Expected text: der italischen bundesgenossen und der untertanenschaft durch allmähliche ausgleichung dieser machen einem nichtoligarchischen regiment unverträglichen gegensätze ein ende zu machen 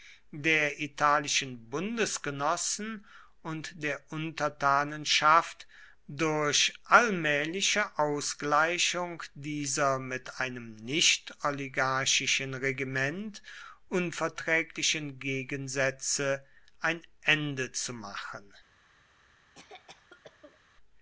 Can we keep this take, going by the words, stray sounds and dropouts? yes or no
no